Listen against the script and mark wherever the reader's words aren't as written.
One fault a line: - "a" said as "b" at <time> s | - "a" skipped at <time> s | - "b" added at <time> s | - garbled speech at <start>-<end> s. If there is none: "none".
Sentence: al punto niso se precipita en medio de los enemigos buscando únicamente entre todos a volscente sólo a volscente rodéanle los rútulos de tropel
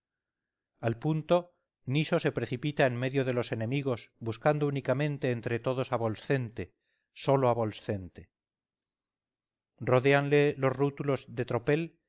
none